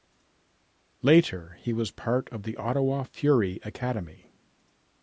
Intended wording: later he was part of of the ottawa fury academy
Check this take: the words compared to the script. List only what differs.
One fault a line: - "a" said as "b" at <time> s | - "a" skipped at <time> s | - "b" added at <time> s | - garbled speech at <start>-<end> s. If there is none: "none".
- "of" skipped at 2.4 s